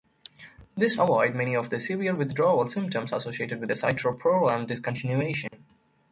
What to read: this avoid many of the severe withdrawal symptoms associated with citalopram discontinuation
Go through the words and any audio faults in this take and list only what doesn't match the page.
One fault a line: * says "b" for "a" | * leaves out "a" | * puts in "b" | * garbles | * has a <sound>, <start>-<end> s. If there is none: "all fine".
* has a dropout, 5.5-5.5 s